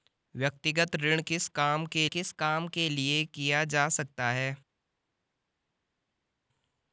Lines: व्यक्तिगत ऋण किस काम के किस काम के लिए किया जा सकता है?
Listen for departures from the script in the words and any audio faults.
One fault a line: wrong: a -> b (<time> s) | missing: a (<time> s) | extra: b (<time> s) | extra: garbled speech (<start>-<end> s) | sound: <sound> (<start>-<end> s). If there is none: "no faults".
no faults